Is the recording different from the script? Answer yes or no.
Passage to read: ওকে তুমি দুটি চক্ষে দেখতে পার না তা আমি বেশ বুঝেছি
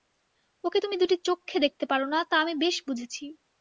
no